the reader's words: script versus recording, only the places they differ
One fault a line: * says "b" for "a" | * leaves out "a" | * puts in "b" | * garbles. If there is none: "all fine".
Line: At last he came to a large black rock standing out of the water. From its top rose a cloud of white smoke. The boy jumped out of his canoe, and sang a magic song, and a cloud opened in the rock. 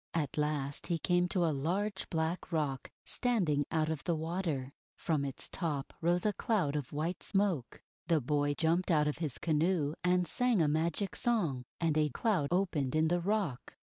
all fine